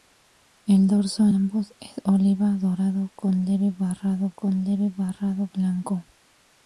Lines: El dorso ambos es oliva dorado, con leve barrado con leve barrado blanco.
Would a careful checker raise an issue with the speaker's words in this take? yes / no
no